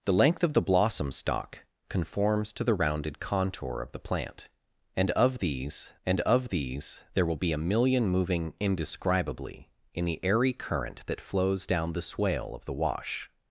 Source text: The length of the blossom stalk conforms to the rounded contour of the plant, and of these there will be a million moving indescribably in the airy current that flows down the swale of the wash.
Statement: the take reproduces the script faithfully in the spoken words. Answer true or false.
false